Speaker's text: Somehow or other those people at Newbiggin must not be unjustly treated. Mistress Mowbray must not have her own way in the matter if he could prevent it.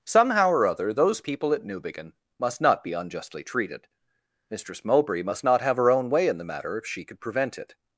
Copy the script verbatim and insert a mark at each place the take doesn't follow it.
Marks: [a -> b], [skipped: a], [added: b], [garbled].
Somehow or other those people at Newbiggin must not be unjustly treated. Mistress Mowbray must not have her own way in the matter if [he -> she] could prevent it.